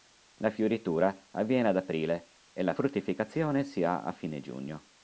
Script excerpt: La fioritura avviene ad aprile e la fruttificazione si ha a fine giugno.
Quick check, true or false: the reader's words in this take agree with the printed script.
true